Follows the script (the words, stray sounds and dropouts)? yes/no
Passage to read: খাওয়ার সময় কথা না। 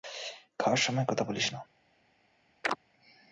no